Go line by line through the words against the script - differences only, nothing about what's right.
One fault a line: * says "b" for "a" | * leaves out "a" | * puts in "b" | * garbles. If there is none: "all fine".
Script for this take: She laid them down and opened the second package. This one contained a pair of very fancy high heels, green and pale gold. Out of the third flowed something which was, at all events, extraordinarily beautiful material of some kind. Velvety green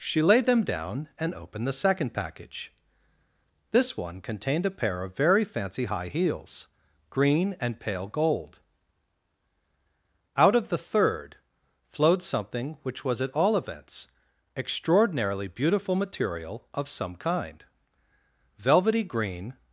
all fine